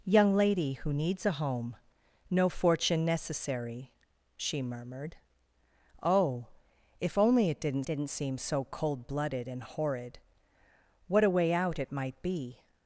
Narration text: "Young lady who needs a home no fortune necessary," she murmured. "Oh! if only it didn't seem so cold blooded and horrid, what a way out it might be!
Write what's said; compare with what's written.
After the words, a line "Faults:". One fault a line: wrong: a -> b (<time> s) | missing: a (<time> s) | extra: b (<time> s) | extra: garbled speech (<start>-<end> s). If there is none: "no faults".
"Young lady who needs a home no fortune necessary," she murmured. "Oh! if only it didn't didn't seem so cold blooded and horrid, what a way out it might be!
Faults:
extra: didn't (7.8 s)